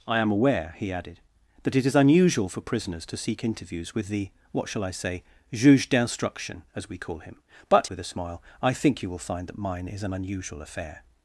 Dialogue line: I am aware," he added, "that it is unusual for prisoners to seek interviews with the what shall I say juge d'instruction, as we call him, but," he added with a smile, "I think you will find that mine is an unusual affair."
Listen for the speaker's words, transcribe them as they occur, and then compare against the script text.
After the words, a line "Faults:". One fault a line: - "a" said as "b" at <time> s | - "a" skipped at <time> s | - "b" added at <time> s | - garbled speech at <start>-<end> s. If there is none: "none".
I am aware," he added, "that it is unusual for prisoners to seek interviews with the what shall I say juge d'instruction, as we call him, but," with a smile, "I think you will find that mine is an unusual affair."
Faults:
- "he added" skipped at 7.9 s